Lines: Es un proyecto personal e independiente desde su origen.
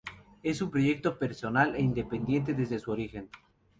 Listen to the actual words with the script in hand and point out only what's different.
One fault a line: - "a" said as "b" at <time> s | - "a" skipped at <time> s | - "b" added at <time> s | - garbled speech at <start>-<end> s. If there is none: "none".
none